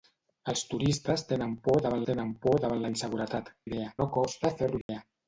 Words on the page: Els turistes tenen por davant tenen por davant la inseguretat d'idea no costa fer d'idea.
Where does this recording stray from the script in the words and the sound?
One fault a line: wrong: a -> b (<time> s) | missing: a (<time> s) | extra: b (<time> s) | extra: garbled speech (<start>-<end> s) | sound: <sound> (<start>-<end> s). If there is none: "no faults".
sound: dropout (4.8-4.9 s)